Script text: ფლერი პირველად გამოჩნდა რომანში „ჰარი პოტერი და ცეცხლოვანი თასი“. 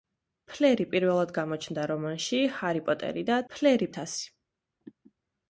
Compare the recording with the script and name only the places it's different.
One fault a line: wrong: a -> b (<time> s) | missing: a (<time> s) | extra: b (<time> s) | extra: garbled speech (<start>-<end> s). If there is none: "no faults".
wrong: ცეცხლოვანი -> ფლერი (3.5 s)